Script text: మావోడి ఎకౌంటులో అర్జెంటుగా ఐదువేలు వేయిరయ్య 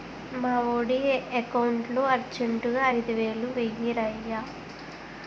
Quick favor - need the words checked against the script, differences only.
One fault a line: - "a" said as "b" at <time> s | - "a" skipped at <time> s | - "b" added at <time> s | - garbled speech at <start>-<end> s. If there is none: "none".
none